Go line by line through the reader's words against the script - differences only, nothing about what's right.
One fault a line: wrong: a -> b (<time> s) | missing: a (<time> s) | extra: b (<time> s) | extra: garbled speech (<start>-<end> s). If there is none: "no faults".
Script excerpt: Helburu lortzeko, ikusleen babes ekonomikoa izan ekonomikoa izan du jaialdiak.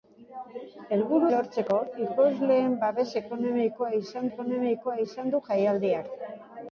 no faults